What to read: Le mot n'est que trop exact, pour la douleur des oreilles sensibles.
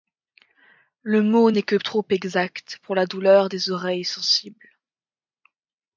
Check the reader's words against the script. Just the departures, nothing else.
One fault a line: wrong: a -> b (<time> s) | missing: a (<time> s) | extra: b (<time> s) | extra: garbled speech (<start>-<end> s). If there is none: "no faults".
no faults